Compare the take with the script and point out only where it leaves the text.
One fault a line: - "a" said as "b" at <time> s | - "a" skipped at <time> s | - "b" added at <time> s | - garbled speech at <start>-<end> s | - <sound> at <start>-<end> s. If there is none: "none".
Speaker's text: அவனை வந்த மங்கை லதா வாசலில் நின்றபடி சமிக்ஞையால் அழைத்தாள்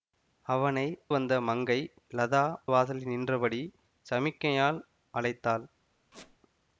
- squeak at 6.1-6.4 s